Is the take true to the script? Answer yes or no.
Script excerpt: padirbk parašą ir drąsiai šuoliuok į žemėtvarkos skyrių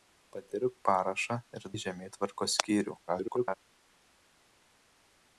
no